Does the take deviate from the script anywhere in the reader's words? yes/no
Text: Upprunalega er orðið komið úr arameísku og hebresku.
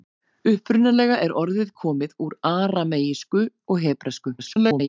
yes